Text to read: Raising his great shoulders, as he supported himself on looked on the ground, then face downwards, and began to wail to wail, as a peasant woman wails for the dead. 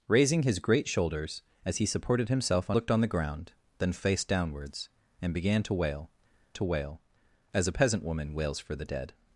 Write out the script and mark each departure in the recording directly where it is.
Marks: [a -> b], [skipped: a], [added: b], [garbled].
Raising his great shoulders, as he supported himself on looked on the ground, then face downwards, and began to wail to wail, as a peasant woman wails for the dead.